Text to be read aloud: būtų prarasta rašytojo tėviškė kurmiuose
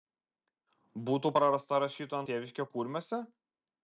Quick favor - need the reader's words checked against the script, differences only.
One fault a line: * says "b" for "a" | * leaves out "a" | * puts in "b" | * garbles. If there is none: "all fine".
all fine